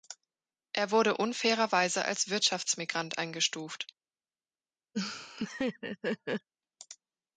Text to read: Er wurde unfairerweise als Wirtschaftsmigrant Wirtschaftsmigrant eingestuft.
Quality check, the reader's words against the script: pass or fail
fail